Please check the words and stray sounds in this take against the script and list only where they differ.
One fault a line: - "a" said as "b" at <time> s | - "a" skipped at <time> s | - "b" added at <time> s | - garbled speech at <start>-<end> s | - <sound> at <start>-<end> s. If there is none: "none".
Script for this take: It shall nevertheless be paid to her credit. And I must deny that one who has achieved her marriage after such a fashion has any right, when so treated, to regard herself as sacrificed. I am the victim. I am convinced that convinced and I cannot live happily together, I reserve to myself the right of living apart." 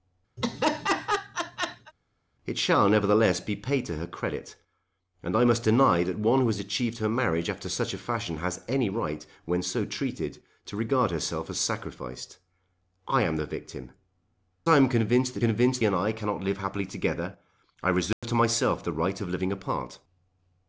- laugh at 0.4-1.9 s
- dropout at 18.1-18.2 s